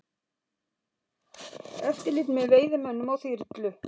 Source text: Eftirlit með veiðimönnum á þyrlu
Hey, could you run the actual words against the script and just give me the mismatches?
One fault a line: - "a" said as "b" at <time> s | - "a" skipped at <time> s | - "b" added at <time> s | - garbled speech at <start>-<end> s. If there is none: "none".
none